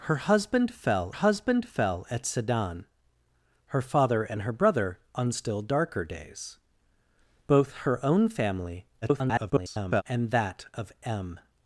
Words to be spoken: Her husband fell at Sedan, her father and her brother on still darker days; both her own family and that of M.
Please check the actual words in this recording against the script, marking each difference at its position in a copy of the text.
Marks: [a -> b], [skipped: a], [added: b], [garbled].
Her husband fell [added: husband fell] at Sedan, her father and her brother on still darker days; both her own family [garbled] and that of M.